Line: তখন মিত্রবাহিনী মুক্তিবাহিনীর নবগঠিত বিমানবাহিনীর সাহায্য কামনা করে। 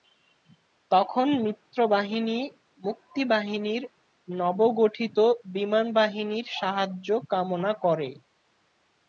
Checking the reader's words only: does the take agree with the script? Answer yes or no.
yes